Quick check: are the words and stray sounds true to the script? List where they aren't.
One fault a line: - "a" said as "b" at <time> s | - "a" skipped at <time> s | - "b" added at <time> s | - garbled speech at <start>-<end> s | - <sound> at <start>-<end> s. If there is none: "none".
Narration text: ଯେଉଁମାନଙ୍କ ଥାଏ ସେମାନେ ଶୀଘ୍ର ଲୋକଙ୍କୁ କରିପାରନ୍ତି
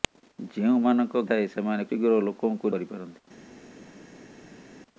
none